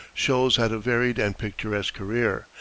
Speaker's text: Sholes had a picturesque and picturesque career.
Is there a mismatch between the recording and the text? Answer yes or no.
yes